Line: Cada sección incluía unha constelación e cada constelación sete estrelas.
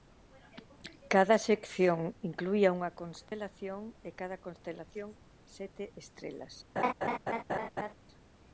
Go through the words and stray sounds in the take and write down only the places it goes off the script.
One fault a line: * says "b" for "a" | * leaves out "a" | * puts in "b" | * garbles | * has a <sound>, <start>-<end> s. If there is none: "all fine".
* has a dropout, 3.3-3.3 s
* has a laugh, 6.8-7.9 s